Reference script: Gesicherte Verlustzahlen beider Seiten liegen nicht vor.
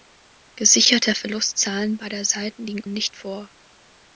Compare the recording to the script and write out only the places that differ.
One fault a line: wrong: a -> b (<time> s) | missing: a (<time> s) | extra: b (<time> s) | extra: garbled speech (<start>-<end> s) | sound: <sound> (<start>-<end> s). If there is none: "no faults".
no faults